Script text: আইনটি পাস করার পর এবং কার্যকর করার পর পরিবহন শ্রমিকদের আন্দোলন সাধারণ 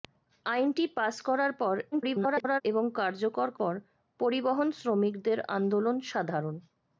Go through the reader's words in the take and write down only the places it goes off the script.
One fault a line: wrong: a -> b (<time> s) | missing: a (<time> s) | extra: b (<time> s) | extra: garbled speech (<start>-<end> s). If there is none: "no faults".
extra: garbled speech (1.9-2.6 s)
missing: করার (3.5 s)